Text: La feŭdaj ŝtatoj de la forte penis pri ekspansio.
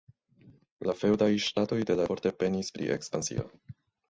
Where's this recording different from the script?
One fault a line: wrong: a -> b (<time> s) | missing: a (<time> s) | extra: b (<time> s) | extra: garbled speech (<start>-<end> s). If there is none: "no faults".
no faults